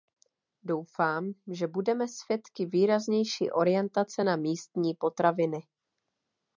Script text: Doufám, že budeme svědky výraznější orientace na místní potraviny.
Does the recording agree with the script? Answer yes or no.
yes